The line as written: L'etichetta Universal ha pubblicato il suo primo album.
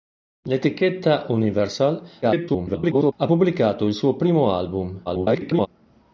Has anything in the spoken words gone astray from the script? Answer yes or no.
yes